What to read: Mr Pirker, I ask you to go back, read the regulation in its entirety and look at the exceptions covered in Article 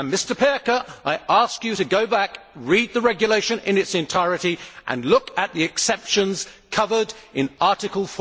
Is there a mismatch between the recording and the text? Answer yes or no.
no